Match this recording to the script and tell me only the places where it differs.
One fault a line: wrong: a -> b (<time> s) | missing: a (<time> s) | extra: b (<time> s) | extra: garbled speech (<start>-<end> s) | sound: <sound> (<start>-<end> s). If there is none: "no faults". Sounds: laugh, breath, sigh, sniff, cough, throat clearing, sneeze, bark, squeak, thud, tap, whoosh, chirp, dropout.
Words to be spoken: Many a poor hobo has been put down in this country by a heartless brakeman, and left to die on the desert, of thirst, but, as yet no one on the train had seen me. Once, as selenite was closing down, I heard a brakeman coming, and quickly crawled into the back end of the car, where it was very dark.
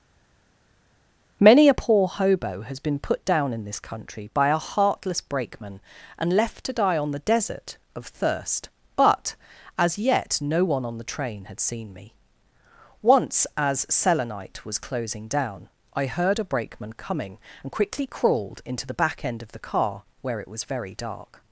no faults